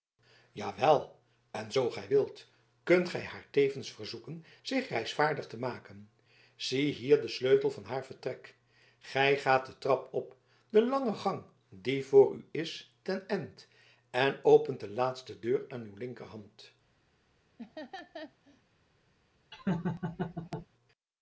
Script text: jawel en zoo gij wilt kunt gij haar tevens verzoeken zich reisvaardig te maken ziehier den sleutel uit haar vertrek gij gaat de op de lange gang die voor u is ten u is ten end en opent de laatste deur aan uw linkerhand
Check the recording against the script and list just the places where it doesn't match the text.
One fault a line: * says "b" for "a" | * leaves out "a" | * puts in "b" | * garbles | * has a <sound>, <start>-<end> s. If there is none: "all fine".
* says "van" for "uit"
* puts in "trap"
* leaves out "u is ten"
* has a laugh, 17.6-18.6 s
* has a laugh, 19.5-20.7 s